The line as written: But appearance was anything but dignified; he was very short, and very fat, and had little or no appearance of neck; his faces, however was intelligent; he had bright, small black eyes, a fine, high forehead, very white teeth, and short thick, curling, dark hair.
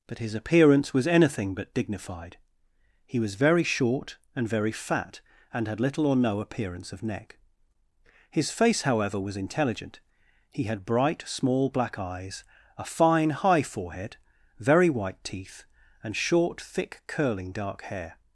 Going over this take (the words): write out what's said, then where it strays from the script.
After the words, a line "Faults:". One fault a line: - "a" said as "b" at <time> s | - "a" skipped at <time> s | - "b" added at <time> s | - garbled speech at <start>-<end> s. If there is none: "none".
But his appearance was anything but dignified; he was very short, and very fat, and had little or no appearance of neck; his face, however was intelligent; he had bright, small black eyes, a fine, high forehead, very white teeth, and short thick, curling, dark hair.
Faults:
- "his" added at 0.2 s
- "faces" said as "face" at 8.5 s